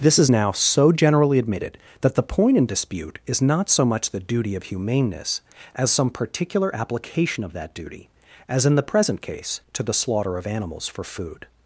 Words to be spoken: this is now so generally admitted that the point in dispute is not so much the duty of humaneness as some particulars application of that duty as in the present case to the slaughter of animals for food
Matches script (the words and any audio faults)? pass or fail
fail